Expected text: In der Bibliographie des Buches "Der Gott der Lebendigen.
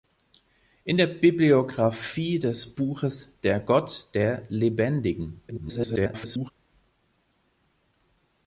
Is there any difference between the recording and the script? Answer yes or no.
yes